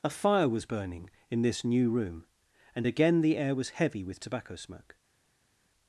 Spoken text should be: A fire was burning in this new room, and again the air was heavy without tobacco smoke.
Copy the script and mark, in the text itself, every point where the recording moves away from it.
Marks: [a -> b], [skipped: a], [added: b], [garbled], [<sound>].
A fire was burning in this new room, and again the air was heavy [without -> with] tobacco smoke.